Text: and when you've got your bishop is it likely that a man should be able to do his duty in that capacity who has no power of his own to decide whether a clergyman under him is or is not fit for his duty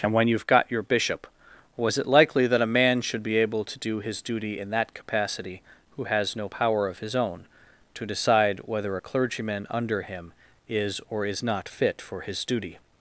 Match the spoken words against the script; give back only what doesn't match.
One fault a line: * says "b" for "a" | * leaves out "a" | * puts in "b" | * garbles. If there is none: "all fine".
* says "was" for "is"